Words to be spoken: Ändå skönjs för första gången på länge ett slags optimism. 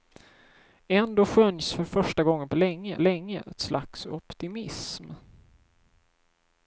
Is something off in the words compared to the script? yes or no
yes